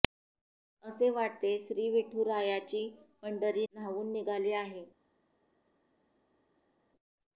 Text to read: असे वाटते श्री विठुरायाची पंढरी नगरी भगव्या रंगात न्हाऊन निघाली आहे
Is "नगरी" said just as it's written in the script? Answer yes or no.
no